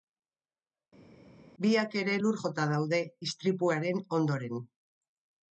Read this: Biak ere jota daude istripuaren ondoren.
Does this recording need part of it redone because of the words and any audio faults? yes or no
yes